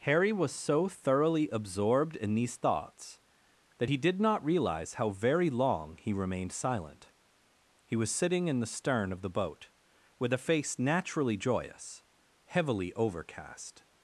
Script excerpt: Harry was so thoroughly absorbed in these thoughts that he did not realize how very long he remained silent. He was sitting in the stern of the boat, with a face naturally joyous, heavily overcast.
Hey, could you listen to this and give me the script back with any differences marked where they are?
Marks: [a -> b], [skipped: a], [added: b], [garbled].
Harry was so thoroughly absorbed in these thoughts that he did not realize how very long he remained silent. He was sitting in the stern of the boat, with a face naturally joyous, heavily overcast.